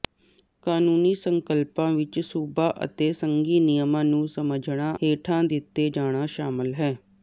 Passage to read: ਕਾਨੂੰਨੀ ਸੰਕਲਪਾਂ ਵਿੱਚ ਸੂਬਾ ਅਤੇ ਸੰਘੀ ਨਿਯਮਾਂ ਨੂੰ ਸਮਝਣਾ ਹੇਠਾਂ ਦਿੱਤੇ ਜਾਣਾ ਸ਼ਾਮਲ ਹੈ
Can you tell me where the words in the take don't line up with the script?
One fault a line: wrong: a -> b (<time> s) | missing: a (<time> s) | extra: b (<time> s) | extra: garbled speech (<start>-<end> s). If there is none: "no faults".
no faults